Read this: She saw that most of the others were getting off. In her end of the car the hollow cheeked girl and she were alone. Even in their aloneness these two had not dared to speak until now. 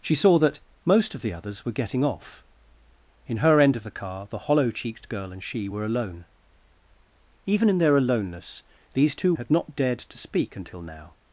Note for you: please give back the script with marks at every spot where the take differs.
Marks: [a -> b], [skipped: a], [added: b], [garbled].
She saw that most of the others were getting off. In her end of the car the hollow cheeked girl and she were alone. Even in their aloneness these two had not dared to speak until now.